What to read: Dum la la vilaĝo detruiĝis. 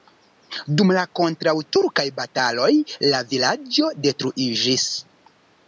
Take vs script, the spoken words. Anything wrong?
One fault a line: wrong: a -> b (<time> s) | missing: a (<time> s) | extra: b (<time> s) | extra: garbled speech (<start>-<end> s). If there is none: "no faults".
extra: kontraŭturkaj bataloj (1.2 s)